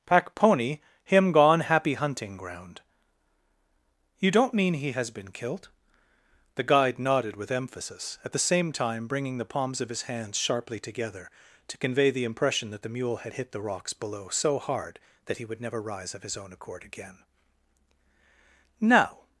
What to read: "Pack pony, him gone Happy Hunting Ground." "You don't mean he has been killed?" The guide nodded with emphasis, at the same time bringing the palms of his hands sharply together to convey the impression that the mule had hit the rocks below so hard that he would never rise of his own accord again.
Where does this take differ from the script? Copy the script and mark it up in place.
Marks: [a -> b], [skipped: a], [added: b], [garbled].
"Pack pony, him gone Happy Hunting Ground." "You don't mean he has been killed?" The guide nodded with emphasis, at the same time bringing the palms of his hands sharply together to convey the impression that the mule had hit the rocks below so hard that he would never rise of his own accord again. [added: Now]